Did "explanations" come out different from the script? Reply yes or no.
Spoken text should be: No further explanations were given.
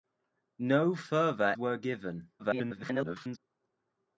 yes